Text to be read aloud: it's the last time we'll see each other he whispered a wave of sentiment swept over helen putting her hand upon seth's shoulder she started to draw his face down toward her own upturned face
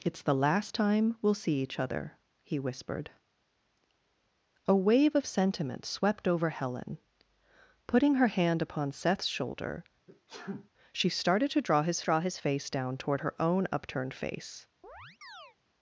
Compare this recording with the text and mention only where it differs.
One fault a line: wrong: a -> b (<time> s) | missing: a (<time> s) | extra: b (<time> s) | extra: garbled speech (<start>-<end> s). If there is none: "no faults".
extra: draw his (12.0 s)